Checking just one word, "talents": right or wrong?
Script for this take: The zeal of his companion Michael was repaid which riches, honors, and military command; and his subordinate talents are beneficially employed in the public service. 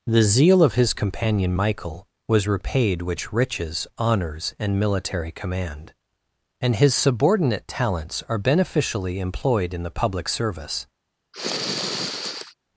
right